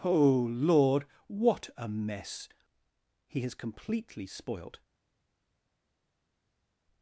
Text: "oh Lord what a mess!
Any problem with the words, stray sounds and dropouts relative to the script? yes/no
yes